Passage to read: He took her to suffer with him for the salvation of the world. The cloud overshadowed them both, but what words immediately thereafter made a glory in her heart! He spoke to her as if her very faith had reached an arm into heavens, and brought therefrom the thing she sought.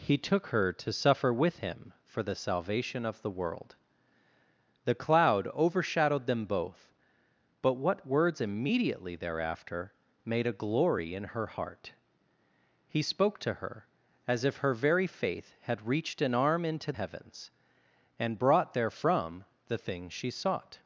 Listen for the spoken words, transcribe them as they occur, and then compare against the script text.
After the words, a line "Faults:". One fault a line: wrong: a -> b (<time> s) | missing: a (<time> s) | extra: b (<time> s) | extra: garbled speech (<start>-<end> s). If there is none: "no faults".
He took her to suffer with him for the salvation of the world. The cloud overshadowed them both, but what words immediately thereafter made a glory in her heart! He spoke to her as if her very faith had reached an arm into heavens, and brought therefrom the thing she sought.
Faults:
no faults